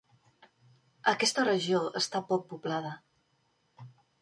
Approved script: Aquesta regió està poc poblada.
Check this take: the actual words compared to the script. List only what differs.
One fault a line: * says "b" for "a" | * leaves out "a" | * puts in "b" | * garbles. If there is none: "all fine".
all fine